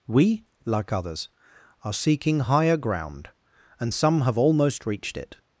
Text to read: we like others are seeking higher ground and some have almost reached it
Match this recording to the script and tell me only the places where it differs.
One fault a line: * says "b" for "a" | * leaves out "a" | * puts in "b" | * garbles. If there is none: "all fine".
all fine